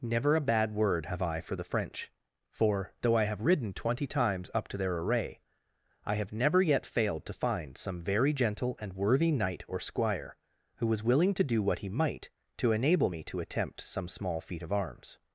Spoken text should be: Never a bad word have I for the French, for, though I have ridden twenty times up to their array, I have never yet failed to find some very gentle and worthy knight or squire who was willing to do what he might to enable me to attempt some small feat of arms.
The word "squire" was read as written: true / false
true